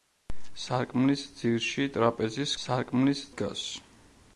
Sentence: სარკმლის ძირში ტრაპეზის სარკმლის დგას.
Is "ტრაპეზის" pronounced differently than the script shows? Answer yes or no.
no